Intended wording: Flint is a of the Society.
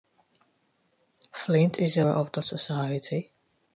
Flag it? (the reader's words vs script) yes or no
no